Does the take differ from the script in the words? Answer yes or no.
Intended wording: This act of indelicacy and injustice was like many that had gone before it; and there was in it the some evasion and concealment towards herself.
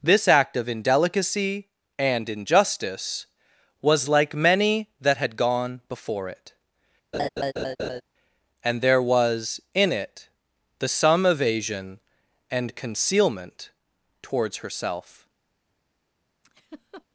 no